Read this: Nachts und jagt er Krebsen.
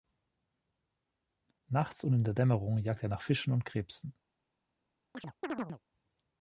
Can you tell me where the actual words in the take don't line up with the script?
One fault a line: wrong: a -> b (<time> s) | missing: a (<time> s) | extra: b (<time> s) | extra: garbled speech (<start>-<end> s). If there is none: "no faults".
extra: in der Dämmerung (2.1 s)
extra: nach Fischen und (3.1 s)